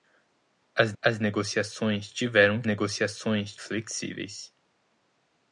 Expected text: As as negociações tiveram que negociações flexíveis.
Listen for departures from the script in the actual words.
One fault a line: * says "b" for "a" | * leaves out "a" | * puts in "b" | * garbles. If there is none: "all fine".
all fine